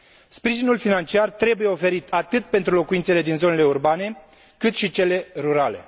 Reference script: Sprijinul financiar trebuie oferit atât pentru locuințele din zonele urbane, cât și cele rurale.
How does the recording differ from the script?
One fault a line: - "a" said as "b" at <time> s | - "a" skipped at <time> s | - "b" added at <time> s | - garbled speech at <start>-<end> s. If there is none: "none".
none